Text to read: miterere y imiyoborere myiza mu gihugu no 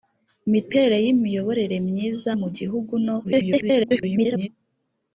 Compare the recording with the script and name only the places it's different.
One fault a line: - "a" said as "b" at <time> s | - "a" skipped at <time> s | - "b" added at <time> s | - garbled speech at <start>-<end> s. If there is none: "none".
- garbled speech at 3.2-4.5 s